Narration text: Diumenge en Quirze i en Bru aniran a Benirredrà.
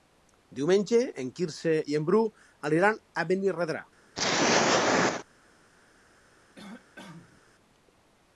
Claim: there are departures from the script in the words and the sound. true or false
true